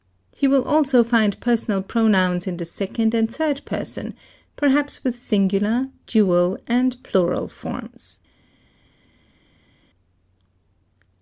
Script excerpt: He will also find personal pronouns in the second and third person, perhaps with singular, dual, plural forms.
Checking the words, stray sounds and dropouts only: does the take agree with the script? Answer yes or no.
no